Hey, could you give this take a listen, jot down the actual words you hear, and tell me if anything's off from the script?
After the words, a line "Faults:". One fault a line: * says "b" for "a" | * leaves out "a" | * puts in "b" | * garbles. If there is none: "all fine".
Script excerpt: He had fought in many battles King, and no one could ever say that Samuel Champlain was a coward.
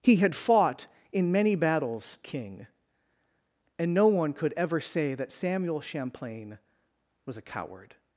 He had fought in many battles King, and no one could ever say that Samuel Champlain was a coward.
Faults:
all fine